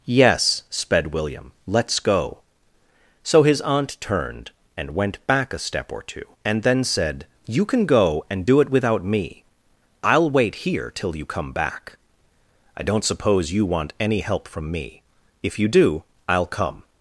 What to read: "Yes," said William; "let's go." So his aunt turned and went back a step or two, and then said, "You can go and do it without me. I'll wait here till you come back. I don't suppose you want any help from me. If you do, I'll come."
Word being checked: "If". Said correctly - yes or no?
yes